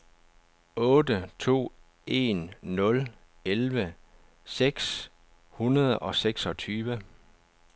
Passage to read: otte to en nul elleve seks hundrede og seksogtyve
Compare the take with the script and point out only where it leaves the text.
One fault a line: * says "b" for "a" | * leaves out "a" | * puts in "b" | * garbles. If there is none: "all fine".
all fine